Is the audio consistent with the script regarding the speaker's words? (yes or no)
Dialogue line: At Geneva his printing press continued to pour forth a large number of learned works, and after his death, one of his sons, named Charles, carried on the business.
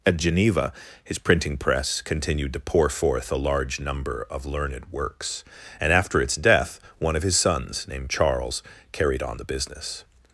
no